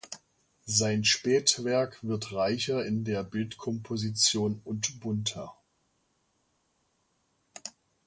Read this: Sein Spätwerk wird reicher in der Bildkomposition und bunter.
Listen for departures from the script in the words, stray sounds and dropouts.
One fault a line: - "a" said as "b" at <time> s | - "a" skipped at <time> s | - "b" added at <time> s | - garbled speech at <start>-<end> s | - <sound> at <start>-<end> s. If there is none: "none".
none